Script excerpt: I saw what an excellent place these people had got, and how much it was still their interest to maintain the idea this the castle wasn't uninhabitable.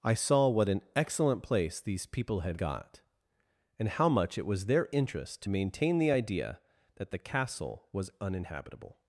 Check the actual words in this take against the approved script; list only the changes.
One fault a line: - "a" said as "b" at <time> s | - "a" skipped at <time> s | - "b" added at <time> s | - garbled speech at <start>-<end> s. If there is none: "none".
- "still" skipped at 4.6 s
- "this" said as "that" at 7.0 s
- "wasn't" said as "was" at 7.9 s